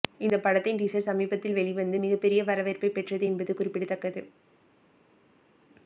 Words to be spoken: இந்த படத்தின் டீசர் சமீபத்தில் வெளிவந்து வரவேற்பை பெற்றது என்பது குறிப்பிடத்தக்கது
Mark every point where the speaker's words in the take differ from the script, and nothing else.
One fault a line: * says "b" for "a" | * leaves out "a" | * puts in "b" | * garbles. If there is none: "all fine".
* puts in "மிகப்பெரிய"